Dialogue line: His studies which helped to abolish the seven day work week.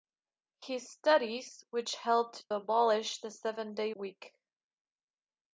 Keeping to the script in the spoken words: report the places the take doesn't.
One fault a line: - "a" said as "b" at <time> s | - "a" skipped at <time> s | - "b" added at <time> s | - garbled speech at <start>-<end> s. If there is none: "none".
- "to" skipped at 2.5 s
- "work" skipped at 3.9 s